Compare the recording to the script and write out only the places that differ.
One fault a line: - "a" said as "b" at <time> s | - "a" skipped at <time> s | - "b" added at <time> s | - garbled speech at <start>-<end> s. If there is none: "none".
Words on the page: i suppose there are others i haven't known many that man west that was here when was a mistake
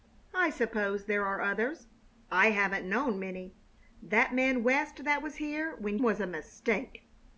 none